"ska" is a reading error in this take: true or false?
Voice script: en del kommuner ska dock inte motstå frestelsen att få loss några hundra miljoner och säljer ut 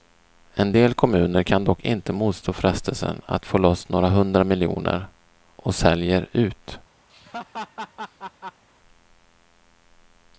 true